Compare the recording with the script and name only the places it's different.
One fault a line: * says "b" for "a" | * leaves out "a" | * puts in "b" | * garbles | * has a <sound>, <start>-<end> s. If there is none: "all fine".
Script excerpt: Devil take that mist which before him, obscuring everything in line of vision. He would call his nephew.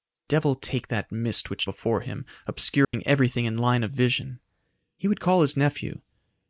* has a dropout, 2.8-2.9 s